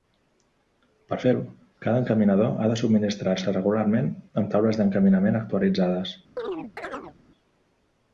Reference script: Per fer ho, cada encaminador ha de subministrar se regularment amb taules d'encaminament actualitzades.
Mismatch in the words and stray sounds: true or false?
true